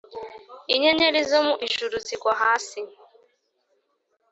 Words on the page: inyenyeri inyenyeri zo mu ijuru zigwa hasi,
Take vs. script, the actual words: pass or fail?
fail